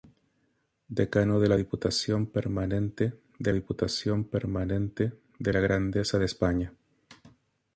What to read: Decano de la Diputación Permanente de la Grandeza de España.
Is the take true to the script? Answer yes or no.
no